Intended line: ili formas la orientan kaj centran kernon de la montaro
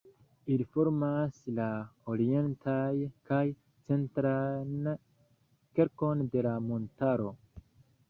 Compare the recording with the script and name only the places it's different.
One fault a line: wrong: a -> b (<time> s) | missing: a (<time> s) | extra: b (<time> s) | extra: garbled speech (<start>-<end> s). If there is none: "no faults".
no faults